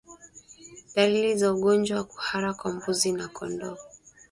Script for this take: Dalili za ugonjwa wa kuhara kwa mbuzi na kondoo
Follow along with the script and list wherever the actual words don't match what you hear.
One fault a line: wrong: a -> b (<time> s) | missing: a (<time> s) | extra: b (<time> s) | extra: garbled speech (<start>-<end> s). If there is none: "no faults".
no faults